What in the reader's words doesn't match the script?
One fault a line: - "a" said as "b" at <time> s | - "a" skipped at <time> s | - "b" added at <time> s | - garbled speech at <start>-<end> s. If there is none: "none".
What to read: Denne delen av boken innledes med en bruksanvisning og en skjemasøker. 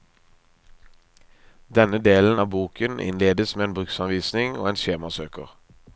none